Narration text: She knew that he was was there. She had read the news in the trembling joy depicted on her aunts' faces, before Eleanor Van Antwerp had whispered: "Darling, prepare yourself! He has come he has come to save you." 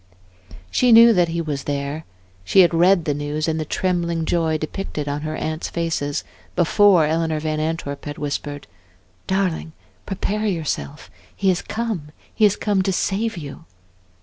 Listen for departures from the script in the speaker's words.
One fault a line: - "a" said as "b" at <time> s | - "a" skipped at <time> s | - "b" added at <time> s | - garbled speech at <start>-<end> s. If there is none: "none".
- "was" skipped at 1.6 s